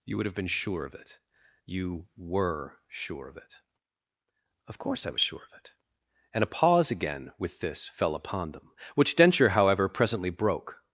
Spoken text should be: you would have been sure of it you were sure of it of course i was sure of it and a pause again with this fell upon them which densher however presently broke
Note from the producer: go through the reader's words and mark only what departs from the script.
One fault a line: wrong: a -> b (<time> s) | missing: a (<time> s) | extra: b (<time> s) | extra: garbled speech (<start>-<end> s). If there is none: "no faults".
no faults